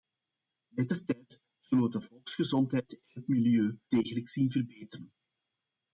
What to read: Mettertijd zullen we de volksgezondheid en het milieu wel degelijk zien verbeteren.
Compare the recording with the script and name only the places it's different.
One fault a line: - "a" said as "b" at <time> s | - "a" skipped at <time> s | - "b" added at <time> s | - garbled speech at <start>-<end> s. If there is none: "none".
- "wel" skipped at 3.8 s